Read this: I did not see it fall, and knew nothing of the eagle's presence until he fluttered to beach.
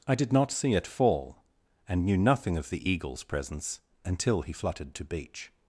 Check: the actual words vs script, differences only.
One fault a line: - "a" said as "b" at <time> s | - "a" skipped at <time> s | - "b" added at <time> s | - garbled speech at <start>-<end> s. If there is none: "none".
none